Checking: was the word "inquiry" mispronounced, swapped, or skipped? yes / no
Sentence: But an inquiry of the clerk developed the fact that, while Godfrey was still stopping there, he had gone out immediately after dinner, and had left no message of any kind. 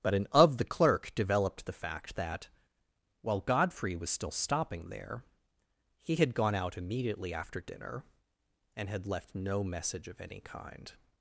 yes